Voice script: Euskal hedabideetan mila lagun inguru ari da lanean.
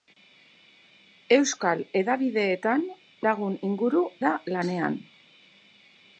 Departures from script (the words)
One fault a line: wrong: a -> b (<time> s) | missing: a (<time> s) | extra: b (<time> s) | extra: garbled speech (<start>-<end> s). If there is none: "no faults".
missing: mila (2.9 s)
missing: ari (4.1 s)